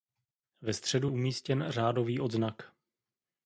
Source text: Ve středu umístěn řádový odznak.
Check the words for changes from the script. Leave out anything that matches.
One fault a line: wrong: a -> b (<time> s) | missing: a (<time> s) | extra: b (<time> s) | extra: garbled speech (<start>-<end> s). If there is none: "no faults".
no faults